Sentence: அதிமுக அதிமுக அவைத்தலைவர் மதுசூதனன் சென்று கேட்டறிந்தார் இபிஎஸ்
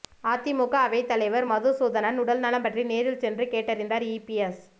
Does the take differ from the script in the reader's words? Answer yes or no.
yes